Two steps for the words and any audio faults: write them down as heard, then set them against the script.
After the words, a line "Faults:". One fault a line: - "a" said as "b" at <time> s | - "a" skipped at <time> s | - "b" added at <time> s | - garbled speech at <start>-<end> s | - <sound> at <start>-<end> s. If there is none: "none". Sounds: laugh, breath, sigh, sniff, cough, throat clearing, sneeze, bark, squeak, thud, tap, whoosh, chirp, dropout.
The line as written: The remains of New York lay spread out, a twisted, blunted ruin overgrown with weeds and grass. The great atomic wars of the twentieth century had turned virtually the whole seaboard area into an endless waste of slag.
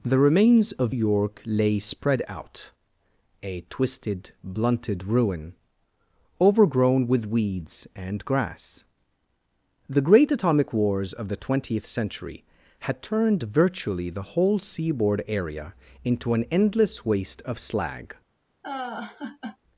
The remains of York lay spread out, a twisted, blunted ruin overgrown with weeds and grass. The great atomic wars of the twentieth century had turned virtually the whole seaboard area into an endless waste of slag.
Faults:
- "New" skipped at 0.9 s
- laugh at 18.6-19.6 s